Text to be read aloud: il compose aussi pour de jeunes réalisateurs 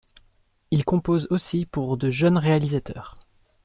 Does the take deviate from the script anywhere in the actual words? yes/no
no